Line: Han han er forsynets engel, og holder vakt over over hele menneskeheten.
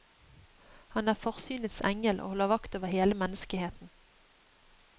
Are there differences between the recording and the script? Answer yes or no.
yes